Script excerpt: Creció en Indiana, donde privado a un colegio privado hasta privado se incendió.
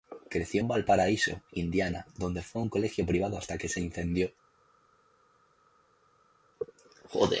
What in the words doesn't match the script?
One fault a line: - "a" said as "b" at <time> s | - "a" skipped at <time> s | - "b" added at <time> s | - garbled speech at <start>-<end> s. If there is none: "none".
- "Valparaíso" added at 0.7 s
- "privado" said as "fue" at 2.4 s
- "privado" said as "que" at 3.6 s